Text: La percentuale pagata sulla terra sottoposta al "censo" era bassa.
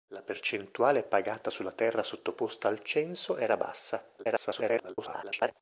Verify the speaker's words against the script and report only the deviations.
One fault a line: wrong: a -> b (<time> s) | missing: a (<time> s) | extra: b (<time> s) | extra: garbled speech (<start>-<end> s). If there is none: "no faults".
extra: garbled speech (4.2-5.5 s)